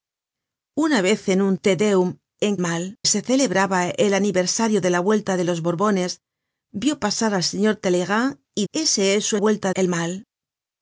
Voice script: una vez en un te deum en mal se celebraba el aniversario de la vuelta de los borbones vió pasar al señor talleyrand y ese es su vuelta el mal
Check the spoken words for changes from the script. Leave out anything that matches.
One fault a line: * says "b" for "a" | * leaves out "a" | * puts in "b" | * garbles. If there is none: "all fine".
all fine